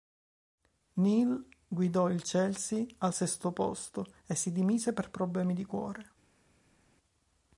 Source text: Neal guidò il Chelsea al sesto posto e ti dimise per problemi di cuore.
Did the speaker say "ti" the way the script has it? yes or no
no